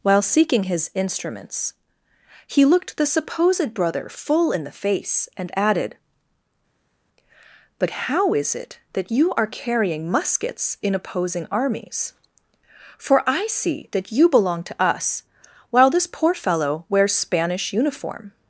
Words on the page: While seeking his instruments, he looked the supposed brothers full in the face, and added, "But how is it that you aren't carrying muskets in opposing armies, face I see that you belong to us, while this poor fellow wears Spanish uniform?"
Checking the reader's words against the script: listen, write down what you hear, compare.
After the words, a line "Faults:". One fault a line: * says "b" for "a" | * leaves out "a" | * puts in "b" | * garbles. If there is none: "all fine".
While seeking his instruments, he looked the supposed brother full in the face, and added, "But how is it that you are carrying muskets in opposing armies, for I see that you belong to us, while this poor fellow wears Spanish uniform?"
Faults:
* says "brother" for "brothers"
* says "are" for "aren't"
* says "for" for "face"